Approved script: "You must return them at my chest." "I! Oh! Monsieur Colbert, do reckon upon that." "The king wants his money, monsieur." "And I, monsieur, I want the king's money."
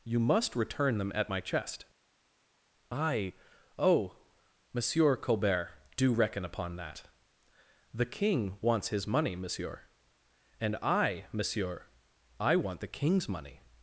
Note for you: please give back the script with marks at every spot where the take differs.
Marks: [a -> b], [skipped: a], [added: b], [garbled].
"You must return them at my chest." "I! Oh! Monsieur Colbert, do reckon upon that." "The king wants his money, monsieur." "And I, monsieur, I want the king's money."